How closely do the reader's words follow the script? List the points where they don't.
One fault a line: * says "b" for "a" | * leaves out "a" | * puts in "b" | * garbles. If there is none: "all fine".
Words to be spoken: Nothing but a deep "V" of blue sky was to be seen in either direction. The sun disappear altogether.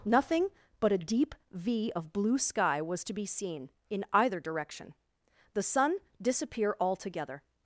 all fine